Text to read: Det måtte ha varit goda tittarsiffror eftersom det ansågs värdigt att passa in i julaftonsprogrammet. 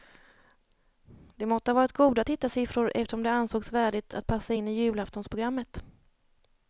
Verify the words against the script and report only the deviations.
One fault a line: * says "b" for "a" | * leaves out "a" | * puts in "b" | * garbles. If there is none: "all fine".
all fine